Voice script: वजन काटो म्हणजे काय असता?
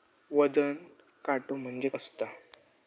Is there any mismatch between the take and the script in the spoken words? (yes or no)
yes